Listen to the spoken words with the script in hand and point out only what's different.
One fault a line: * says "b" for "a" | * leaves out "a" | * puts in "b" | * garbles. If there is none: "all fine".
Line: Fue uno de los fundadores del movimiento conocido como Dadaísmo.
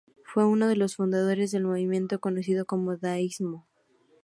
all fine